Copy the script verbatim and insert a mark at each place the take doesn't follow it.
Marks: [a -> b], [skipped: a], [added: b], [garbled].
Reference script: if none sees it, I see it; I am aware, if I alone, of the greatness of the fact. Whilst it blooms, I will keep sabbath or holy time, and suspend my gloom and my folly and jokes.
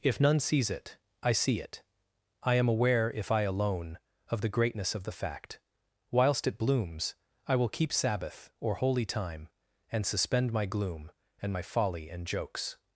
if none sees it, I see it; I am aware, if I alone, of the greatness of the fact. Whilst it blooms, I will keep sabbath or holy time, and suspend my gloom and my folly and jokes.